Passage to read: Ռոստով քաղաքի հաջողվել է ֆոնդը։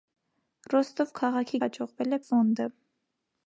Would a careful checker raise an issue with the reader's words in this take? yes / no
no